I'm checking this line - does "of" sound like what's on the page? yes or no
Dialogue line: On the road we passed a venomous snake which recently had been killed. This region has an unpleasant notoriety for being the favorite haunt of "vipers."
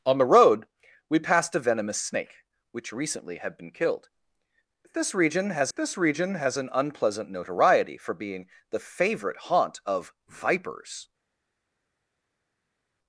yes